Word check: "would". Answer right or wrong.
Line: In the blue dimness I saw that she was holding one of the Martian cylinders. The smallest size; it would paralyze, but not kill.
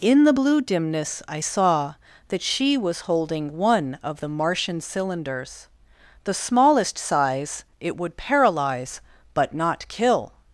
right